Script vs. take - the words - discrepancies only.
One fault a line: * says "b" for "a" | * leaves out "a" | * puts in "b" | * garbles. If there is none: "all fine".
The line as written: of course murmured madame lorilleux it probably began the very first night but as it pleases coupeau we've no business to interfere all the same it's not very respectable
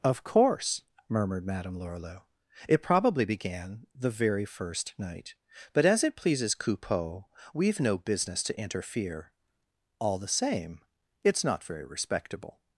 all fine